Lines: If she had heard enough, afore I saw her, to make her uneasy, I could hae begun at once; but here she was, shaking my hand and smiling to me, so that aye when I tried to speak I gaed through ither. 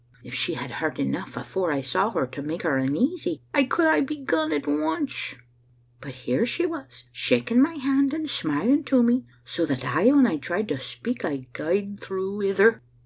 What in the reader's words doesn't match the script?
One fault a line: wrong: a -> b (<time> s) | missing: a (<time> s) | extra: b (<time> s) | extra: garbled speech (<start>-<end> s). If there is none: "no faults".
no faults